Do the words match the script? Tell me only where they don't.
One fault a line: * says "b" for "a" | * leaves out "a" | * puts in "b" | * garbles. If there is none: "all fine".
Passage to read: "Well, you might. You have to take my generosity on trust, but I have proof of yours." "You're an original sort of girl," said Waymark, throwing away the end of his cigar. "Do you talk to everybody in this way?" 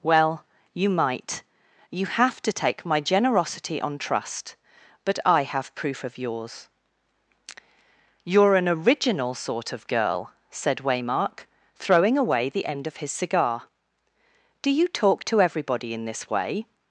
all fine